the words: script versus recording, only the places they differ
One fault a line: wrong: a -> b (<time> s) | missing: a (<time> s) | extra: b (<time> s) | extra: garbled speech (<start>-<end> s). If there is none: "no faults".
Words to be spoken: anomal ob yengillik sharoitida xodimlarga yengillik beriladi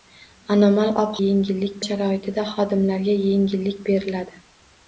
no faults